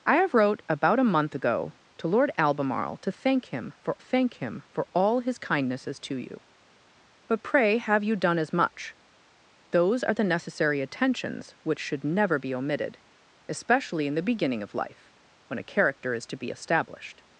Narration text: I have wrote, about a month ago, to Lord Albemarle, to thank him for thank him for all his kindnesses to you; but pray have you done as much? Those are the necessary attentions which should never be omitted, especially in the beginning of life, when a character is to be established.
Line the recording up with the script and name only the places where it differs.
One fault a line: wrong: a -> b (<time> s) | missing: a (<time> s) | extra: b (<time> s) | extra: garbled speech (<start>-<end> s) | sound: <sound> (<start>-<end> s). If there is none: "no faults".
no faults